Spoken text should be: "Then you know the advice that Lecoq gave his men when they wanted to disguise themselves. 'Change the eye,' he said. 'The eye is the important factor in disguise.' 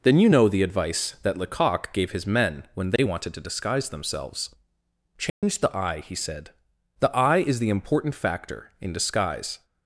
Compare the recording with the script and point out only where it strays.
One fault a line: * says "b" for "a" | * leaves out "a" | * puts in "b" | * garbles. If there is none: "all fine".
all fine